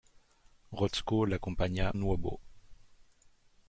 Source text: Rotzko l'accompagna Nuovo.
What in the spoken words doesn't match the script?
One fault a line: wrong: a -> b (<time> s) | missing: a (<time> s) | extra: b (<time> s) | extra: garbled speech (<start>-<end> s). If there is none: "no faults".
no faults